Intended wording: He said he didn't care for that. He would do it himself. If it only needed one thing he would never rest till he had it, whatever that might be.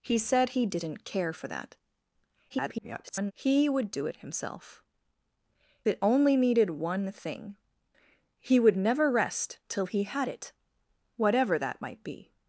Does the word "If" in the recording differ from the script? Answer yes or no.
yes